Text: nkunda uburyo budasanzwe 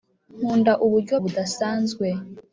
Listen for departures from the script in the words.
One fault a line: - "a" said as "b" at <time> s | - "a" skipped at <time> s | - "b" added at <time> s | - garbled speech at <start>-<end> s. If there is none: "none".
none